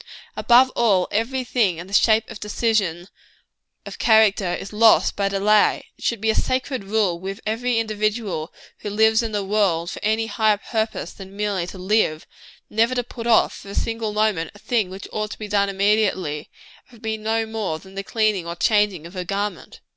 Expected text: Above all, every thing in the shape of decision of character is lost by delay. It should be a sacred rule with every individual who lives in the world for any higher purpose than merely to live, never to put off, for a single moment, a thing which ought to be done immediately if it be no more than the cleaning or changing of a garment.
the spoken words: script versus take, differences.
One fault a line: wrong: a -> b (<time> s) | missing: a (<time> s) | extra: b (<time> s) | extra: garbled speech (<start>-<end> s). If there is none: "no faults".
no faults